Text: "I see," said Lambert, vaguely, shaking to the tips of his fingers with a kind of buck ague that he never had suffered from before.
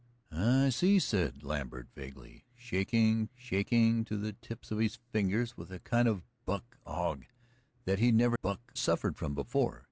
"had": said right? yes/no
no